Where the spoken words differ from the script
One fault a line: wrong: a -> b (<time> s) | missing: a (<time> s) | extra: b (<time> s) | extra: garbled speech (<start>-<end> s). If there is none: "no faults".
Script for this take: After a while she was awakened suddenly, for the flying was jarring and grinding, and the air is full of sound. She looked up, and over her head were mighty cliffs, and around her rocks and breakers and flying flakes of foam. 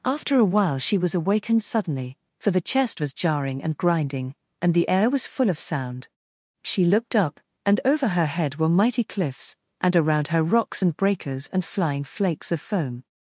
wrong: flying -> chest (2.7 s)
wrong: is -> was (5.1 s)